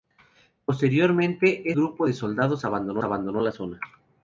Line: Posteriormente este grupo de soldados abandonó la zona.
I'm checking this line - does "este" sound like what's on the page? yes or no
no